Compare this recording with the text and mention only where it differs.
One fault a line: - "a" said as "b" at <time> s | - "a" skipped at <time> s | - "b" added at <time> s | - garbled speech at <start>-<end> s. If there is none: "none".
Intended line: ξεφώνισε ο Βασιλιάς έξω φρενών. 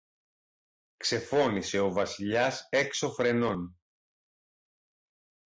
none